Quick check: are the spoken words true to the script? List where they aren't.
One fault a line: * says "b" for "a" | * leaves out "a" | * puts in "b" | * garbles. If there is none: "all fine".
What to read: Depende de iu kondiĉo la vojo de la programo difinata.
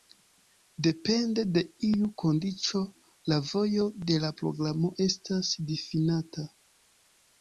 * puts in "estas"